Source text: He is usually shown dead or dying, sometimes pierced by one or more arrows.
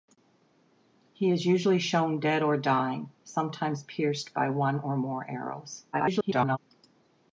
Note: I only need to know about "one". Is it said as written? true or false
true